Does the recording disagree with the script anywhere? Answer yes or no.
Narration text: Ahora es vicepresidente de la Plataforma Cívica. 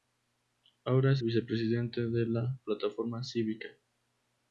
no